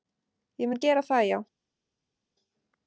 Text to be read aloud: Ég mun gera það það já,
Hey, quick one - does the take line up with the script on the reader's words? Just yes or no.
no